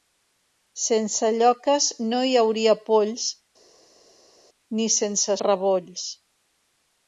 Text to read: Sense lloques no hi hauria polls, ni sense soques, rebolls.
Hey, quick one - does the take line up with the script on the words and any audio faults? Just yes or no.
no